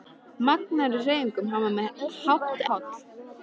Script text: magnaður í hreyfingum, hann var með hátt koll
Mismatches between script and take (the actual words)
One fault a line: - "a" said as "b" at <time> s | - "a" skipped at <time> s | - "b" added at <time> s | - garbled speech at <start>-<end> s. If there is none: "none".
none